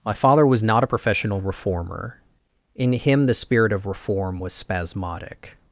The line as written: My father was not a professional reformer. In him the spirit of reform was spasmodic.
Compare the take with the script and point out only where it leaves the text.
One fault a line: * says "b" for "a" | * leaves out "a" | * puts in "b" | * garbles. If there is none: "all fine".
all fine